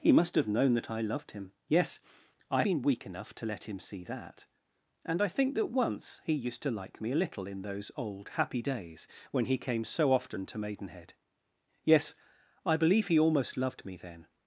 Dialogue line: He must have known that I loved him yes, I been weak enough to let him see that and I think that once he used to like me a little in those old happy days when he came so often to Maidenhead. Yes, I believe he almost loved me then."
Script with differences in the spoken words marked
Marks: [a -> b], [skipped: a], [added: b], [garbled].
He must have known that I loved him yes, I been weak enough to let him see that and I think that once he used to like me a little in those old happy days when he came so often to Maidenhead. Yes, I believe he almost loved me then."